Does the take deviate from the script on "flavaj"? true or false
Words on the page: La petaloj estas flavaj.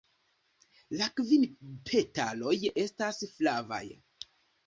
false